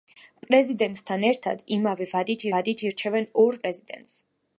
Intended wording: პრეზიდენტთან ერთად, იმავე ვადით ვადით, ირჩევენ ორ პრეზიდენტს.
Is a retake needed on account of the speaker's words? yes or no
no